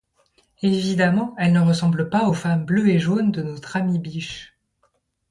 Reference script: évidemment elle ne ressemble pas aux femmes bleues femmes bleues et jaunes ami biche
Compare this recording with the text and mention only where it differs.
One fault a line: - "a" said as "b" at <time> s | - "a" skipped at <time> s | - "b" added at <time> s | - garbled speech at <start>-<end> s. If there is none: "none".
- "femmes bleues et jaunes" said as "et jaunes de notre" at 2.9 s